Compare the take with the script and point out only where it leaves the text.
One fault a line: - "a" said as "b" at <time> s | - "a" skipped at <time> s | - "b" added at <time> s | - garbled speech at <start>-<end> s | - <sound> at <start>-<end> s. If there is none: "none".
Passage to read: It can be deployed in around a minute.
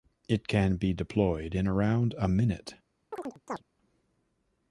- chirp at 3.1-3.6 s